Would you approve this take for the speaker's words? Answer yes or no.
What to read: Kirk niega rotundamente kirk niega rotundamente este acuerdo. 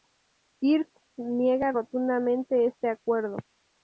no